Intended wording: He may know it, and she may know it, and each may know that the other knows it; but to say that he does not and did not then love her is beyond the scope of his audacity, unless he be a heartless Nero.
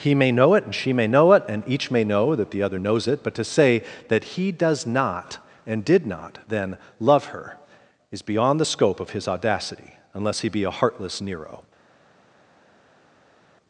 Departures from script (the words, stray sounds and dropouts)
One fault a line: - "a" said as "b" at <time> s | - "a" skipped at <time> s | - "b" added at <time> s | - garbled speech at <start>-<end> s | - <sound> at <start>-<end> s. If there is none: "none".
none